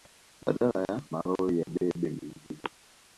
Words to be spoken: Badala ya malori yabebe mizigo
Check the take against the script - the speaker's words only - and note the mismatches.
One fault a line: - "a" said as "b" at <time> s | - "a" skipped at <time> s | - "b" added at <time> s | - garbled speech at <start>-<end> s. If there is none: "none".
none